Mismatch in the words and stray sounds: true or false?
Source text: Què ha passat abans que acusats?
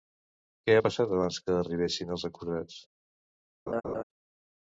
true